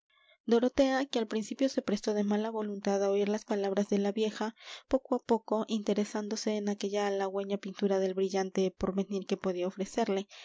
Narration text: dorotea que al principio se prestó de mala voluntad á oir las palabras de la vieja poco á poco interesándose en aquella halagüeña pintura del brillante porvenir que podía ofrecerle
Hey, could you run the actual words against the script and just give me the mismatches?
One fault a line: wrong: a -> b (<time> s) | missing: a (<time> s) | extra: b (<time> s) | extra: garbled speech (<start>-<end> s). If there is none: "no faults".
no faults